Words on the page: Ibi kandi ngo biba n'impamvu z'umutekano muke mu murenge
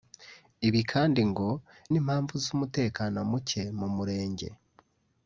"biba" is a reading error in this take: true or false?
true